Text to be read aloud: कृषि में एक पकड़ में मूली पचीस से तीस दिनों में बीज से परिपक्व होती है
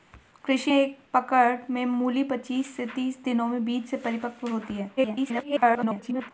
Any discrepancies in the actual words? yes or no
yes